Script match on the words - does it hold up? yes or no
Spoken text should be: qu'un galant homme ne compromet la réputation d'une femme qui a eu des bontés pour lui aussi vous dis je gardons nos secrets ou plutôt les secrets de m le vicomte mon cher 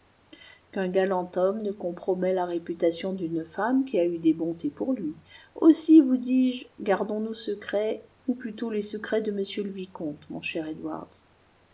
yes